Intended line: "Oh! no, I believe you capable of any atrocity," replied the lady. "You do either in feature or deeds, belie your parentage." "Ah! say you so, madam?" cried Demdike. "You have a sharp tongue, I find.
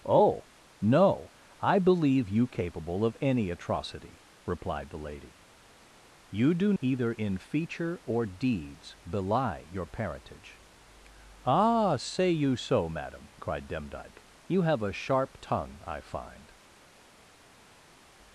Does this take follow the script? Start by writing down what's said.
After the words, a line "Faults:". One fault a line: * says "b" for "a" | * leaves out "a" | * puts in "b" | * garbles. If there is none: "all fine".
"Oh! no, I believe you capable of any atrocity," replied the lady. "You do either in feature or deeds, belie your parentage." "Ah! say you so, madam?" cried Demdike. "You have a sharp tongue, I find.
Faults:
all fine